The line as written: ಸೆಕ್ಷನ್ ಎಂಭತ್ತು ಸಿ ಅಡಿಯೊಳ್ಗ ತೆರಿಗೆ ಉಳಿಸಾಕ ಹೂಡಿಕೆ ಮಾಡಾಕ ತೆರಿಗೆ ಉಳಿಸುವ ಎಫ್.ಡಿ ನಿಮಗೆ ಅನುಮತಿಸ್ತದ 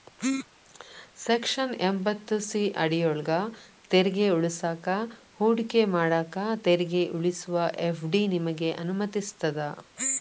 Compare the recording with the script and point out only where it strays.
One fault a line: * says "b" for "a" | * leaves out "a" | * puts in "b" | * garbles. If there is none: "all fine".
all fine